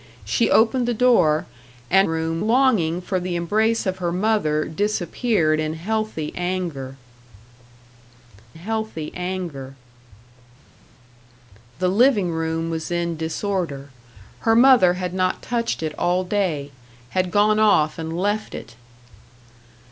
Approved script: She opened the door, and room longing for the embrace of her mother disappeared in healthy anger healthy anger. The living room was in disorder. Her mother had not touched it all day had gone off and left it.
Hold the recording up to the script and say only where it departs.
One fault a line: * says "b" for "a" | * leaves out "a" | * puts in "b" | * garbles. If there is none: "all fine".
all fine